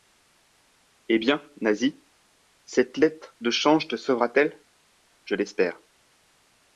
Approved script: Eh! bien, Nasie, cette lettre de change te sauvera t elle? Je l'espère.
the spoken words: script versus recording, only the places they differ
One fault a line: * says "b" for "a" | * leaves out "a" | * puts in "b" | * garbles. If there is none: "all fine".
all fine